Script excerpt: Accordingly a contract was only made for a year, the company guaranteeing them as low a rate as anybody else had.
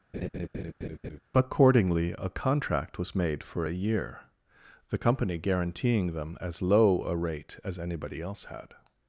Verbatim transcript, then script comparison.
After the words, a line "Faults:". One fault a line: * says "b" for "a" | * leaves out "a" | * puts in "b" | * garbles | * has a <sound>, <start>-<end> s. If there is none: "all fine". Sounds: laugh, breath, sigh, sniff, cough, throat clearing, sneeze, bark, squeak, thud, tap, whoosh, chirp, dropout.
Accordingly a contract was made for a year, the company guaranteeing them as low a rate as anybody else had.
Faults:
* has a laugh, 0.1-1.2 s
* leaves out "only"